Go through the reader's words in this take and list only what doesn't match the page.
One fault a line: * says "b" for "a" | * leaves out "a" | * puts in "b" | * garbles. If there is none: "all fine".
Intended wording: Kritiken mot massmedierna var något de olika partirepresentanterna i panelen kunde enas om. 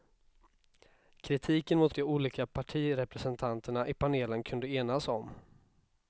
* leaves out "massmedierna var något"